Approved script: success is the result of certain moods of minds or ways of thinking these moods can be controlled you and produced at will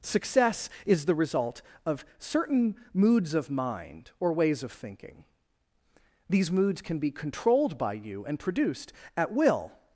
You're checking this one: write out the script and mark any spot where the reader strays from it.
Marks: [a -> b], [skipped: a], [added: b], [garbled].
success is the result of certain moods of [minds -> mind] or ways of thinking these moods can be controlled [added: by] you and produced at will